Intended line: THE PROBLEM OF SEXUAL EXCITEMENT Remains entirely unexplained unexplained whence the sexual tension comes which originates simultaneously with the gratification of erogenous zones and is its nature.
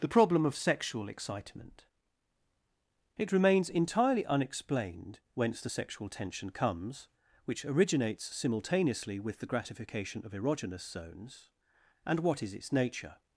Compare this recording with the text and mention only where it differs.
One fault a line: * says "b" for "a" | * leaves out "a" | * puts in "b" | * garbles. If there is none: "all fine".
* puts in "It"
* leaves out "unexplained"
* puts in "what"